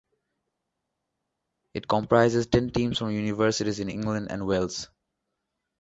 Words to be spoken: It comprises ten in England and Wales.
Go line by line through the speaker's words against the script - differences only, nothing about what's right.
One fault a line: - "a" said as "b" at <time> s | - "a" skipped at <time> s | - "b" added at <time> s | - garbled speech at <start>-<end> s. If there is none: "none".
- "teams from universities" added at 2.7 s